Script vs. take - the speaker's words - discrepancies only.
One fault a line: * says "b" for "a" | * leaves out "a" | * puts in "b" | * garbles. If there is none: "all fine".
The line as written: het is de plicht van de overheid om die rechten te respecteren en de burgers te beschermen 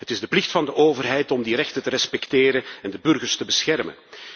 all fine